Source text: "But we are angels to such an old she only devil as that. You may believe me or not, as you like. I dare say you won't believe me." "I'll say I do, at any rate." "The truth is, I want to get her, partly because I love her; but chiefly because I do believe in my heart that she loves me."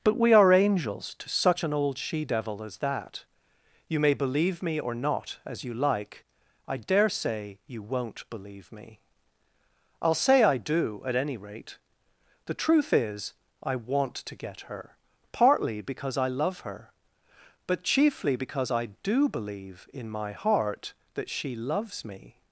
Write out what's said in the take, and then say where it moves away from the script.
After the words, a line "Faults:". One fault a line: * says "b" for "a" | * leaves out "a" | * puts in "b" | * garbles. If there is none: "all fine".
"But we are angels to such an old she devil as that. You may believe me or not, as you like. I dare say you won't believe me." "I'll say I do, at any rate." "The truth is, I want to get her, partly because I love her; but chiefly because I do believe in my heart that she loves me."
Faults:
* leaves out "only"